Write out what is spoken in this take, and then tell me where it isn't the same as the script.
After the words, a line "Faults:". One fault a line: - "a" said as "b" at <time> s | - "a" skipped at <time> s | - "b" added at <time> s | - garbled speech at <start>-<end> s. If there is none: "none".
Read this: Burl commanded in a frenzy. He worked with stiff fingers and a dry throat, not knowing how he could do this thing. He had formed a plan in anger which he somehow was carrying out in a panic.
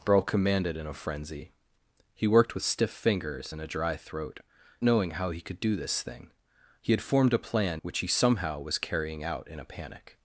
Burl commanded in a frenzy. He worked with stiff fingers and a dry throat, knowing how he could do this thing. He had formed a plan which he somehow was carrying out in a panic.
Faults:
- "not" skipped at 4.4 s
- "in anger" skipped at 7.8 s